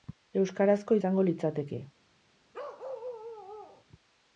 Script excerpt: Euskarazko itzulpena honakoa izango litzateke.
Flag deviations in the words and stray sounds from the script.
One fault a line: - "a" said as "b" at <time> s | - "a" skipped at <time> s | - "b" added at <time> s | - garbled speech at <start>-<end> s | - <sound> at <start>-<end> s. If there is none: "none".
- "itzulpena honakoa" skipped at 1.0 s
- bark at 2.5-3.9 s